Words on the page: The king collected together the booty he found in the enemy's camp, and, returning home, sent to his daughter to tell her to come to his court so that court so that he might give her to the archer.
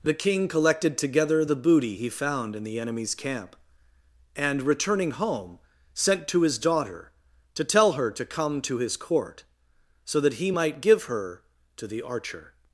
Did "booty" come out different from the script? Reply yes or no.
no